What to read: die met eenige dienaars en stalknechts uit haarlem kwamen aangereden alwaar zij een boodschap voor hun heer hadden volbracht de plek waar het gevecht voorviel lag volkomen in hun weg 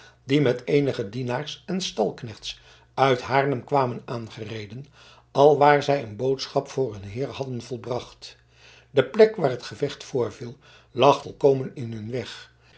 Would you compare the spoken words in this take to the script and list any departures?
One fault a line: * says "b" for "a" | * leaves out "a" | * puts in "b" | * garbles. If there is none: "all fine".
all fine